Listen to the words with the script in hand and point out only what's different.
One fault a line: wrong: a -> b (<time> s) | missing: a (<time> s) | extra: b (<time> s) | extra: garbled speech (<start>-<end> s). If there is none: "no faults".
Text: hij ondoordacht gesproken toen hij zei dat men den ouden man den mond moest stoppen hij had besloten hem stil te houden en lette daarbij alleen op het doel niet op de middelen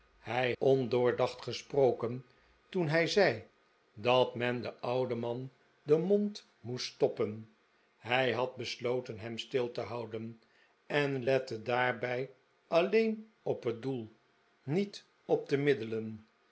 no faults